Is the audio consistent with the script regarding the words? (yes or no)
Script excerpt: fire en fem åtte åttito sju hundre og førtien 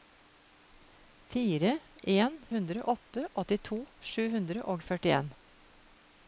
no